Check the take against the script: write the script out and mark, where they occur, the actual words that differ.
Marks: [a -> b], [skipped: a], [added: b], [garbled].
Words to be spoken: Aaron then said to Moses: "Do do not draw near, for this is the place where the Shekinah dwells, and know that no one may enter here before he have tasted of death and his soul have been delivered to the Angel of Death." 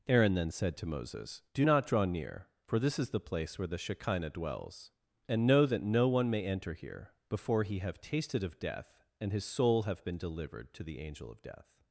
Aaron then said to Moses: "Do [skipped: do] not draw near, for this is the place where the Shekinah dwells, and know that no one may enter here before he have tasted of death and his soul have been delivered to the Angel of Death."